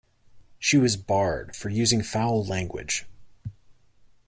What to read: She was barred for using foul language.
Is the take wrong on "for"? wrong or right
right